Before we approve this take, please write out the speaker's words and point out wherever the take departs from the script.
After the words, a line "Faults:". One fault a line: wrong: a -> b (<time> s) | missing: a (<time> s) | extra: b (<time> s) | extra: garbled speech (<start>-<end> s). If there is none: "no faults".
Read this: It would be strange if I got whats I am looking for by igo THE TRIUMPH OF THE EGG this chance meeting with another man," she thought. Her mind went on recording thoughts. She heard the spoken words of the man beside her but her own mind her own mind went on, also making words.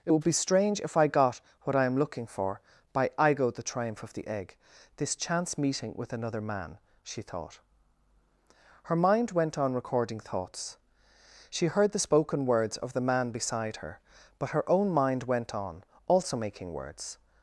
It would be strange if I got what I am looking for by igo THE TRIUMPH OF THE EGG this chance meeting with another man," she thought. Her mind went on recording thoughts. She heard the spoken words of the man beside her but her own mind went on, also making words.
Faults:
wrong: whats -> what (1.6 s)
missing: her own mind (15.2 s)